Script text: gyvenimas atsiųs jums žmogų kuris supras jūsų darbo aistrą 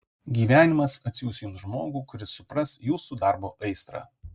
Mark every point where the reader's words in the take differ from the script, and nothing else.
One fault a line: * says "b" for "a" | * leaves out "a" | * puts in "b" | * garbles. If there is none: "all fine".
all fine